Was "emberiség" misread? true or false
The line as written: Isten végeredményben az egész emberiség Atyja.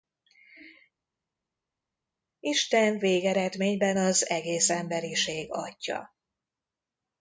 false